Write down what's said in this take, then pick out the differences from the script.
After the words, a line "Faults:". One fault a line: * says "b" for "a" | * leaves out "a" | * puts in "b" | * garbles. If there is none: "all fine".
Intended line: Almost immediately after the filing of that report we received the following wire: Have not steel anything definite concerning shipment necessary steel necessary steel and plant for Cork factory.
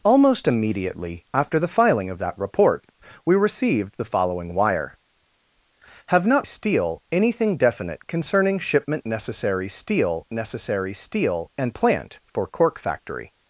Almost immediately after the filing of that report we received the following wire: Have not steel anything definite concerning shipment necessary steel necessary steel and plant for Cork factory.
Faults:
all fine